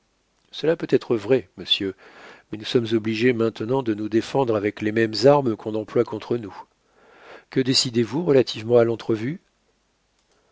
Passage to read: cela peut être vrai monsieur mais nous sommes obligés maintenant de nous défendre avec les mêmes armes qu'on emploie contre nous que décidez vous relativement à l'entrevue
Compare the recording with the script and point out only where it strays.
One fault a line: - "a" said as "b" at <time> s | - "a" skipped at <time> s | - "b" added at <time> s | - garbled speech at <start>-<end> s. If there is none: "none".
none